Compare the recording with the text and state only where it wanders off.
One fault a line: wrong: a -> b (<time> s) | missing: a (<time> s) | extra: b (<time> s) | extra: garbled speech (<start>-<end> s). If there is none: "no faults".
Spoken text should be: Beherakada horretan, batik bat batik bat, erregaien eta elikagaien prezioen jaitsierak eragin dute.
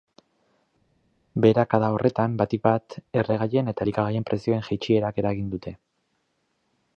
missing: batik bat (3.0 s)